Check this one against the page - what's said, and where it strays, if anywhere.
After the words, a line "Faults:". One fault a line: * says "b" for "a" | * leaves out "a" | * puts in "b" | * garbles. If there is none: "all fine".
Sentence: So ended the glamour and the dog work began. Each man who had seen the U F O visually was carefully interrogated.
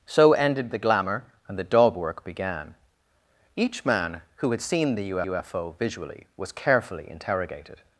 So ended the glamour and the dog work began. Each man who had seen the U U F O visually was carefully interrogated.
Faults:
* puts in "U"